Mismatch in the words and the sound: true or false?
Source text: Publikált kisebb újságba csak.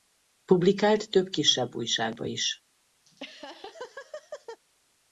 true